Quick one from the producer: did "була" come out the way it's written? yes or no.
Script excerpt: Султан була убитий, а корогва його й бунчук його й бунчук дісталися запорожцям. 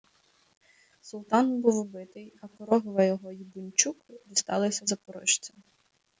no